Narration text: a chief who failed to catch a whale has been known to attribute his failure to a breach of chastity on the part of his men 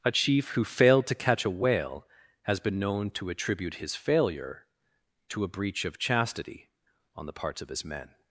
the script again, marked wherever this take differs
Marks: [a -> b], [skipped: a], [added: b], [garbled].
a chief who failed to catch a whale has been known to attribute his failure to a breach of chastity on the [part -> parts] of his men